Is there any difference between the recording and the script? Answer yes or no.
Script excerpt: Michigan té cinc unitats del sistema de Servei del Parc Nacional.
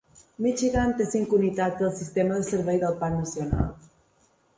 no